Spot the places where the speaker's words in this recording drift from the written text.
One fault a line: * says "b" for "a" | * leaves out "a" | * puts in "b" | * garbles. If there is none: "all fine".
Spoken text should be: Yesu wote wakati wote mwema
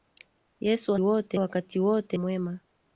all fine